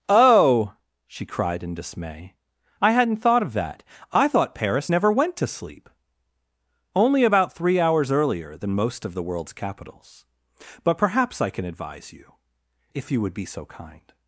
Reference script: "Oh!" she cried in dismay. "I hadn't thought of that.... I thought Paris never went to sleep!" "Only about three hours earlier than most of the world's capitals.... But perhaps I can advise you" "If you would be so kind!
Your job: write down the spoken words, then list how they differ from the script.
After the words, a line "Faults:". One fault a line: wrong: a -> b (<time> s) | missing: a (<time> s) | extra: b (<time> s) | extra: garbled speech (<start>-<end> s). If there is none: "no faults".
"Oh!" she cried in dismay. "I hadn't thought of that.... I thought Paris never went to sleep!" "Only about three hours earlier than most of the world's capitals.... But perhaps I can advise you" "If you would be so kind!
Faults:
no faults